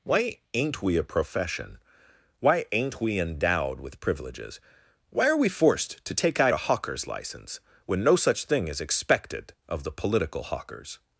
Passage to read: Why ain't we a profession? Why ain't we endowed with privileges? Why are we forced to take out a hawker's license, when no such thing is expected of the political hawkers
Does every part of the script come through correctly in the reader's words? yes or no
yes